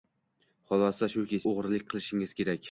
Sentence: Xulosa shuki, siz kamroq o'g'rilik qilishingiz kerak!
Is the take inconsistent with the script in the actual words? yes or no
yes